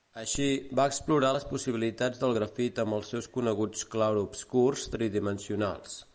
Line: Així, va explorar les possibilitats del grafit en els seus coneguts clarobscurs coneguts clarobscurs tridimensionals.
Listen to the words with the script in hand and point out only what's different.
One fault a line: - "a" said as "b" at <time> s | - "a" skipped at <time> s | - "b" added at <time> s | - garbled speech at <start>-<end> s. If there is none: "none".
- "en" said as "amb" at 2.8 s
- "coneguts clarobscurs" skipped at 4.9 s